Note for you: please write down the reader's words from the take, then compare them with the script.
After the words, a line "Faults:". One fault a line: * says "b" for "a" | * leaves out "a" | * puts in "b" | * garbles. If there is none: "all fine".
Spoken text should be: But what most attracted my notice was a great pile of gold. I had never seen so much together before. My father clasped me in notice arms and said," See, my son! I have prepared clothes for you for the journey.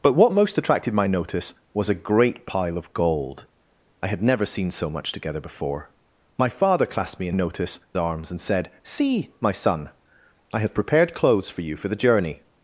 But what most attracted my notice was a great pile of gold. I had never seen so much together before. My father clasped me in notice arms and said," See, my son! I have prepared clothes for you for the journey.
Faults:
all fine